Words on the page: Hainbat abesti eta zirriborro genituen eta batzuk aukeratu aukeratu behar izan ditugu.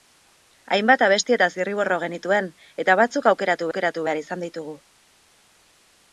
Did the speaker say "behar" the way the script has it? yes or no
yes